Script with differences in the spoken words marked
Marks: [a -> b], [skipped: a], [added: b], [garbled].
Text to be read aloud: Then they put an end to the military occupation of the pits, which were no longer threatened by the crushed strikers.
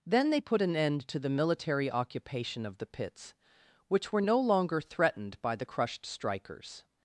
Then they put an end to the military occupation of the pits, which were no longer threatened by the crushed strikers.